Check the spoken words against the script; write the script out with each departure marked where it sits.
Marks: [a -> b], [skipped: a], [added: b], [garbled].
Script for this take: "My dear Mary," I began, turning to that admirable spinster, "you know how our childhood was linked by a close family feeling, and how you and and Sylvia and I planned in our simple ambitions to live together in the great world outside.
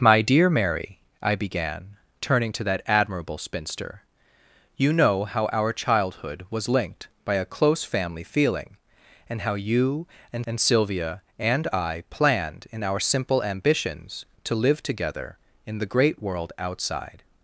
"My dear Mary," I began, turning to that admirable spinster, "you know how our childhood was linked by a close family feeling, and how you and and Sylvia and I planned in our simple ambitions to live together in the great world outside.